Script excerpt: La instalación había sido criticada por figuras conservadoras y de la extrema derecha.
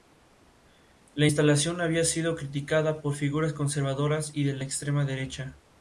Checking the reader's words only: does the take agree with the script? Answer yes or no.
yes